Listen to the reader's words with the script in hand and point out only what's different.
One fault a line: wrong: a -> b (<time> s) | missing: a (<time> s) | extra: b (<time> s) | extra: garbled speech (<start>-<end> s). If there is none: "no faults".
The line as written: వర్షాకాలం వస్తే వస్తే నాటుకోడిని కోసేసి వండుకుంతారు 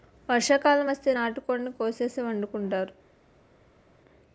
missing: వస్తే (1.1 s)